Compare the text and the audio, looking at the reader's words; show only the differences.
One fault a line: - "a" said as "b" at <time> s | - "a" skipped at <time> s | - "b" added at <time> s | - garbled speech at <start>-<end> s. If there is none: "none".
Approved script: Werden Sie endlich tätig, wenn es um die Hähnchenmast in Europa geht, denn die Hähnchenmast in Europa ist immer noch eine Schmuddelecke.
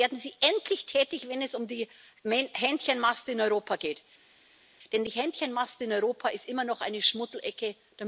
none